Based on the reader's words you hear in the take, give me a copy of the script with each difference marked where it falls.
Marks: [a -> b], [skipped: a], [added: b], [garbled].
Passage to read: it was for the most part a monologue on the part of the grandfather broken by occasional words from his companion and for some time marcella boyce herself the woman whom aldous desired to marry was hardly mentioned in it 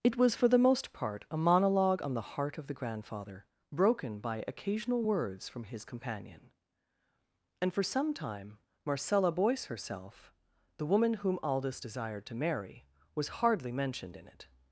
it was for the most part a monologue on the [part -> heart] of the grandfather broken by occasional words from his companion and for some time marcella boyce herself the woman whom aldous desired to marry was hardly mentioned in it